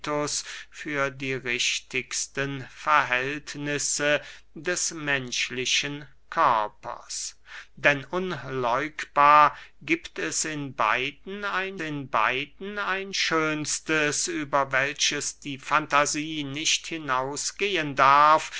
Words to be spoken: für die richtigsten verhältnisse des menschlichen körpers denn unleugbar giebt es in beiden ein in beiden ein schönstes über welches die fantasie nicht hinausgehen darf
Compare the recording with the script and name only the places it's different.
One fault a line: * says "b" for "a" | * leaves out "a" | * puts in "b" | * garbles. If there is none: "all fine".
all fine